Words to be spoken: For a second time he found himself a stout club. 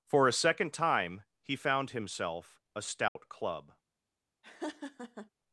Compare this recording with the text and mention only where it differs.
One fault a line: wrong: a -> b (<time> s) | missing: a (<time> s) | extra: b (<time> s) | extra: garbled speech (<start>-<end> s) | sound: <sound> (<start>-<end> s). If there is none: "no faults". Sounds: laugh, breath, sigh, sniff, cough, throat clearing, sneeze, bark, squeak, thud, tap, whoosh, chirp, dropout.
sound: dropout (3.1-3.2 s)
sound: laugh (4.4-5.3 s)